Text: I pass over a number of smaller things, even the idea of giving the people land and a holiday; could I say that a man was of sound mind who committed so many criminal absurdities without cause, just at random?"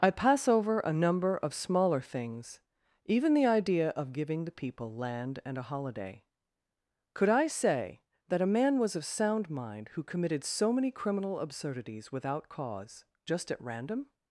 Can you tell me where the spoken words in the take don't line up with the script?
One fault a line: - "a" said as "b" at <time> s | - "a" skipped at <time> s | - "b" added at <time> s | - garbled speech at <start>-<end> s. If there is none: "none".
none